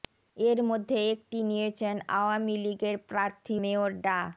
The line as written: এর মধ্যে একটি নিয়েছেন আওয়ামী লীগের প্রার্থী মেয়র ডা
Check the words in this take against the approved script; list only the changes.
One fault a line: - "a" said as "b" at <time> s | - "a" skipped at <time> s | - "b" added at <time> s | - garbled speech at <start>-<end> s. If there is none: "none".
none